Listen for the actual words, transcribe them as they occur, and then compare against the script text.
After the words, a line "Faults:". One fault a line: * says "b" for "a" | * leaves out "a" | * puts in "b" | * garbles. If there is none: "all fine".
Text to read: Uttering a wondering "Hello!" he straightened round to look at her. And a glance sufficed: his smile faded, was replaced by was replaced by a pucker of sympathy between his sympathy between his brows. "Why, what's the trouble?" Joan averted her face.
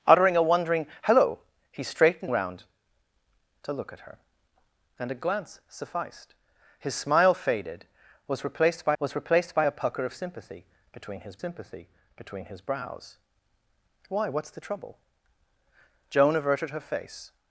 Uttering a wondering "Hello!" he straightened round to look at her. And a glance sufficed: his smile faded, was replaced by was replaced by a pucker of sympathy between his sympathy between his brows. "Why, what's the trouble?" Joan averted her face.
Faults:
all fine